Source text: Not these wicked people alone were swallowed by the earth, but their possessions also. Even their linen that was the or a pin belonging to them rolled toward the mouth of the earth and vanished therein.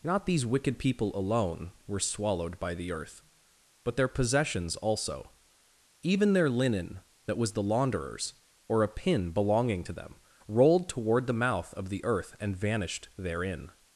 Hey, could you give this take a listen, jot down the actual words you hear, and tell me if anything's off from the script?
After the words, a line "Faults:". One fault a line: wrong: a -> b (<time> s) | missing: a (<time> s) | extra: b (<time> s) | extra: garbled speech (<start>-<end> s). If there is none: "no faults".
Not these wicked people alone were swallowed by the earth, but their possessions also. Even their linen that was the launderer's or a pin belonging to them rolled toward the mouth of the earth and vanished therein.
Faults:
extra: launderer's (7.6 s)